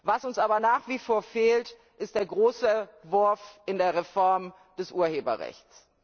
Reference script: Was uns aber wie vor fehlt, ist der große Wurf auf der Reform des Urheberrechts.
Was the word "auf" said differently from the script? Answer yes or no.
yes